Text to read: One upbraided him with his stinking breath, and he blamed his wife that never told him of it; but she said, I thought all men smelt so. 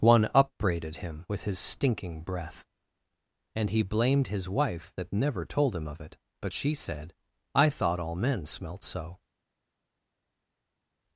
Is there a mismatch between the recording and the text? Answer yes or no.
no